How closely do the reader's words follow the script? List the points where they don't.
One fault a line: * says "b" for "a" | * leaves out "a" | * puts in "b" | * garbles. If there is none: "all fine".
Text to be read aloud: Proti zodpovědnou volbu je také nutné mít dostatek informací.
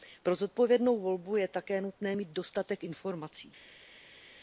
* says "Pro" for "Proti"